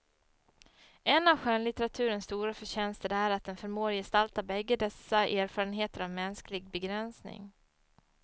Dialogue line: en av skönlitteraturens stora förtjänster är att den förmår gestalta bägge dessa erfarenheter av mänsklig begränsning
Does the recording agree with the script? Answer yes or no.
yes